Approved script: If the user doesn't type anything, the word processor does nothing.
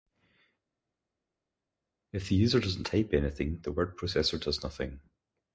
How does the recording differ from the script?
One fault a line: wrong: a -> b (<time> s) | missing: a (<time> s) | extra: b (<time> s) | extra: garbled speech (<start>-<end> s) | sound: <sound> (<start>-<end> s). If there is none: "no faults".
no faults